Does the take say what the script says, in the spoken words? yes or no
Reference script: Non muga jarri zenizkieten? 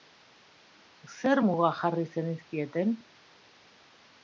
no